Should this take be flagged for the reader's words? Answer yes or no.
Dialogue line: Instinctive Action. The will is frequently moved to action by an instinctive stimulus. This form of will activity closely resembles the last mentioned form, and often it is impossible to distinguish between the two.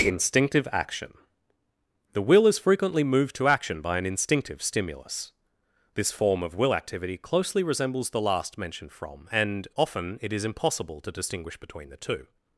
yes